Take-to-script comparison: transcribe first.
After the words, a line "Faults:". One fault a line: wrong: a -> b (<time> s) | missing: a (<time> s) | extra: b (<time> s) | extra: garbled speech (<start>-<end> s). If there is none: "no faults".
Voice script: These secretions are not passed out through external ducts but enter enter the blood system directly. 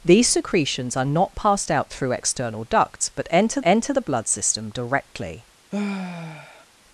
These secretions are not passed out through external ducts but enter enter the blood system directly.
Faults:
no faults